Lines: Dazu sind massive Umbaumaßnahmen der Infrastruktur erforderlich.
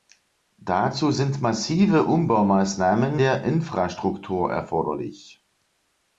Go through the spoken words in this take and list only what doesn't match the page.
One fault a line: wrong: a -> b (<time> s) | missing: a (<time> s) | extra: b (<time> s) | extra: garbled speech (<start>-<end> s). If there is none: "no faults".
no faults